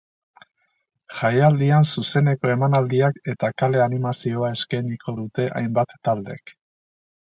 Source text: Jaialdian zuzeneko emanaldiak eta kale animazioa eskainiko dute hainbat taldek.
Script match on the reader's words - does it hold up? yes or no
yes